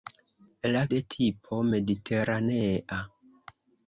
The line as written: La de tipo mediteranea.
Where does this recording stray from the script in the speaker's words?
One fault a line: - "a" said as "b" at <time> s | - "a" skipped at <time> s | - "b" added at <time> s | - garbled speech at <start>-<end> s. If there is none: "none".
none